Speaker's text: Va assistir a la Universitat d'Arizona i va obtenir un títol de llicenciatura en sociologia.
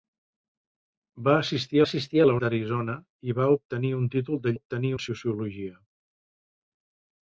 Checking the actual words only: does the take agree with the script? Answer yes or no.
no